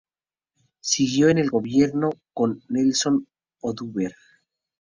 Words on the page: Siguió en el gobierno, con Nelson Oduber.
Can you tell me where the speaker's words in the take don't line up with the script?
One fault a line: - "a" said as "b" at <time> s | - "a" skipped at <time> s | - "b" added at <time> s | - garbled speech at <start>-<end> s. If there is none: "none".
none